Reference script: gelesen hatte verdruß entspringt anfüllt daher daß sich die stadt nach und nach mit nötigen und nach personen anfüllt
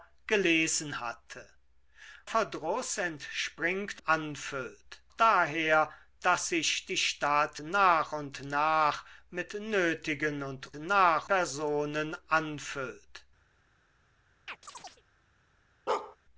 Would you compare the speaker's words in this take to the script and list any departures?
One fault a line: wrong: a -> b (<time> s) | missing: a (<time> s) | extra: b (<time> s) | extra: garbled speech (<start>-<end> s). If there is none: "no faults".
no faults